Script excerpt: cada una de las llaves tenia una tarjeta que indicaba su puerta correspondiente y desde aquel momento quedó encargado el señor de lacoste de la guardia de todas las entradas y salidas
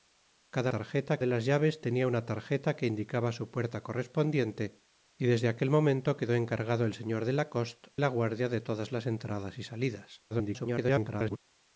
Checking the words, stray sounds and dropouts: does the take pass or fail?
fail